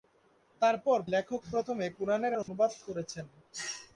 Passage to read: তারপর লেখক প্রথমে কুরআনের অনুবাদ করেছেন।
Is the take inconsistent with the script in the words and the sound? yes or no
yes